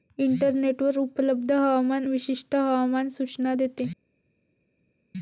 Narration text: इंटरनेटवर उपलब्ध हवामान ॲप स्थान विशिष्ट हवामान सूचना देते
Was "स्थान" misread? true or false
true